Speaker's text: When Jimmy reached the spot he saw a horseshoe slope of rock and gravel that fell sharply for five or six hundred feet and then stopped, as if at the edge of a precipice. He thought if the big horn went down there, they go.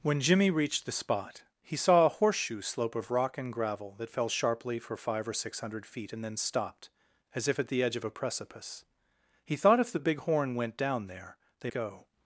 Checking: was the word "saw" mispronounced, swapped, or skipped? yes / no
no